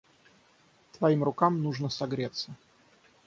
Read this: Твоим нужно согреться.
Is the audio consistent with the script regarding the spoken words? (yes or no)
no